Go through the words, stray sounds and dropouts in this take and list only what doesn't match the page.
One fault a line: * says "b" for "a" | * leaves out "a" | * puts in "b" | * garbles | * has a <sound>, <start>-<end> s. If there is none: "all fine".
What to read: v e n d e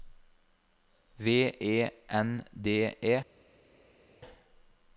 all fine